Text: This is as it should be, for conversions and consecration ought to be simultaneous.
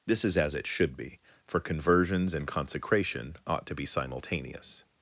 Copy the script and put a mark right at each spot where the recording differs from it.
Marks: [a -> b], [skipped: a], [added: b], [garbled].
This is as it should be, for conversions and consecration ought to be simultaneous.